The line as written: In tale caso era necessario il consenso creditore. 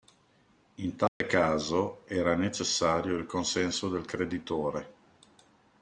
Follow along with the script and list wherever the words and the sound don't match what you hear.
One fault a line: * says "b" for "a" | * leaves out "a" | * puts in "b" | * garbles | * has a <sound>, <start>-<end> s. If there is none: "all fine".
* has a dropout, 1.1-1.2 s
* puts in "del"